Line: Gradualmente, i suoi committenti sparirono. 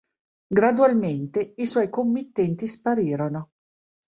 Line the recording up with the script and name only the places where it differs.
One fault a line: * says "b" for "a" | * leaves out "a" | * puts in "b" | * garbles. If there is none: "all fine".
all fine